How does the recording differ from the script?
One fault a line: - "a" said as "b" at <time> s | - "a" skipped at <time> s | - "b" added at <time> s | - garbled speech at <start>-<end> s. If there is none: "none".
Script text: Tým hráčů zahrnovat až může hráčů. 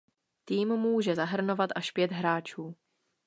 - "hráčů" said as "může" at 0.7 s
- "může" said as "pět" at 1.9 s